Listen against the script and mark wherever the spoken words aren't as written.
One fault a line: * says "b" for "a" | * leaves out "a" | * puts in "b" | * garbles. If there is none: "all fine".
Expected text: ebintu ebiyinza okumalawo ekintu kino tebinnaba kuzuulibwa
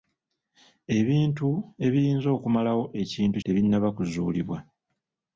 * leaves out "kino"